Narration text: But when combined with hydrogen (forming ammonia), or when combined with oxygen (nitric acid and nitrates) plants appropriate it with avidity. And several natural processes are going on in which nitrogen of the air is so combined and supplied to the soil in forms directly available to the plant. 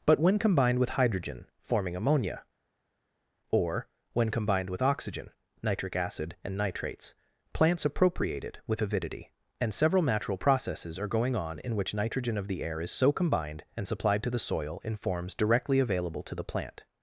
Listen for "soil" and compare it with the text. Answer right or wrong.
right